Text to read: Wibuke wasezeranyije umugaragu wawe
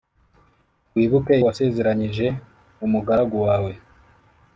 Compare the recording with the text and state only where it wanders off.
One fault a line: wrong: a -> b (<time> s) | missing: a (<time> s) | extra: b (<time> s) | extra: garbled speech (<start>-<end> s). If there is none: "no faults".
no faults